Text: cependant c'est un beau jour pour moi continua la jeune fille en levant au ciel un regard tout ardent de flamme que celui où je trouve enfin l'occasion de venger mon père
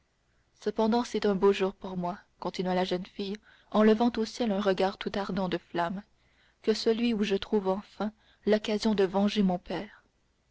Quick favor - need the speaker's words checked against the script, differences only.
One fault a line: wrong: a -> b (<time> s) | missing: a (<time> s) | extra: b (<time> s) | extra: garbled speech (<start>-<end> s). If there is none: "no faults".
no faults